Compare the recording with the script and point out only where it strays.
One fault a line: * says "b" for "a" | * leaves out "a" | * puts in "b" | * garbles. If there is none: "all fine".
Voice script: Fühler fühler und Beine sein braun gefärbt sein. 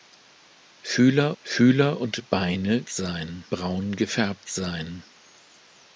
all fine